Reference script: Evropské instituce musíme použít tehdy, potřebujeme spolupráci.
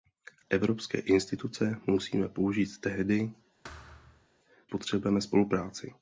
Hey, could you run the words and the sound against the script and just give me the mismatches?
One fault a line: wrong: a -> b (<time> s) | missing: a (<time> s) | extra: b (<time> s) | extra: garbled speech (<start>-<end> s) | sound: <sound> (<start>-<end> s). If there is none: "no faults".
sound: thud (3.6-4.3 s)